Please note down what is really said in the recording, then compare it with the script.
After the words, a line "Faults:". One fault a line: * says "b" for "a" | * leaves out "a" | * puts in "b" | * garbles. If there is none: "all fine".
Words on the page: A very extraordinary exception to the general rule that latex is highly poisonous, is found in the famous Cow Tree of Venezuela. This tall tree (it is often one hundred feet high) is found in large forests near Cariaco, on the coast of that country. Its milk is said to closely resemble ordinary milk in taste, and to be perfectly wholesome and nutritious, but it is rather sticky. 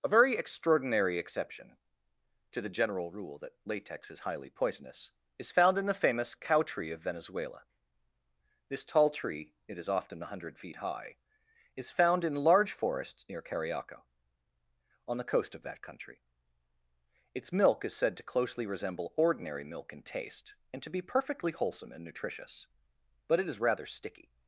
A very extraordinary exception to the general rule that latex is highly poisonous, is found in the famous Cow Tree of Venezuela. This tall tree (it is often one hundred feet high) is found in large forests near Cariaco, on the coast of that country. Its milk is said to closely resemble ordinary milk in taste, and to be perfectly wholesome and nutritious, but it is rather sticky.
Faults:
all fine